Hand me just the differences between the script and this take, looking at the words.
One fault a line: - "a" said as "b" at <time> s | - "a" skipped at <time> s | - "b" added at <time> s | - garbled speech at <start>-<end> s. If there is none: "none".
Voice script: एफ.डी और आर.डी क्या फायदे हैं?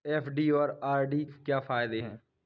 none